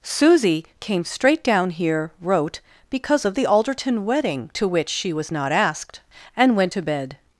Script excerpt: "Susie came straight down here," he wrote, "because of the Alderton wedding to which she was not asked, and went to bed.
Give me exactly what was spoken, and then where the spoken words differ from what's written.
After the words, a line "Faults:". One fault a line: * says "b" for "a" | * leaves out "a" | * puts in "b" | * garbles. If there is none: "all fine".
"Susie came straight down here," wrote, "because of the Alderton wedding to which she was not asked, and went to bed.
Faults:
* leaves out "he"